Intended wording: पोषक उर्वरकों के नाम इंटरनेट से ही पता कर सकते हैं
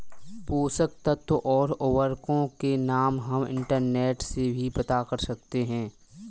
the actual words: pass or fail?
fail